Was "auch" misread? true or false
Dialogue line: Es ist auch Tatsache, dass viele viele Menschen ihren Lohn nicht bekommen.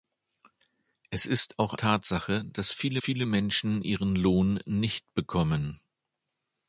false